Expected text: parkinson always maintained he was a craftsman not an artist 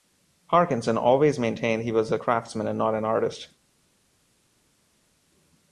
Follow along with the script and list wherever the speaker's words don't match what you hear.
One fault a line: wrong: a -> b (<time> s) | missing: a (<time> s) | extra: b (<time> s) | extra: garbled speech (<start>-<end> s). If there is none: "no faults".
extra: and (2.7 s)